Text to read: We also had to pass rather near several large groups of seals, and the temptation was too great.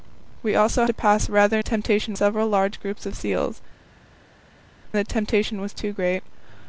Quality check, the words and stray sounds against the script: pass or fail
fail